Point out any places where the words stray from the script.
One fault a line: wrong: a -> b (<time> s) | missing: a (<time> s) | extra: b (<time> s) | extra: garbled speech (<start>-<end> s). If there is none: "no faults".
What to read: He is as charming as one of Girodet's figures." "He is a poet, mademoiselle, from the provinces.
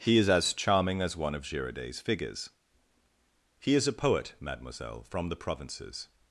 no faults